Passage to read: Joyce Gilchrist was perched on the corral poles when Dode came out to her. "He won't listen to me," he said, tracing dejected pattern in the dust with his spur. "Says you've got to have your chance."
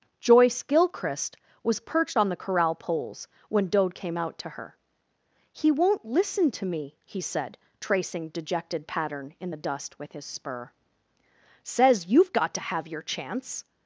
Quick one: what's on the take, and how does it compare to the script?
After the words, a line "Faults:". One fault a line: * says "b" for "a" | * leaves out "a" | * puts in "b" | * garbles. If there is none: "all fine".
Joyce Gilchrist was perched on the corral poles when Dode came out to her. "He won't listen to me," he said, tracing dejected pattern in the dust with his spur. "Says you've got to have your chance."
Faults:
all fine